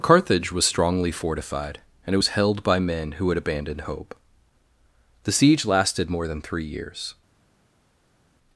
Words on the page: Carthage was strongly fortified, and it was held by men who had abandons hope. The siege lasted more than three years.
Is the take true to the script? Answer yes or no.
no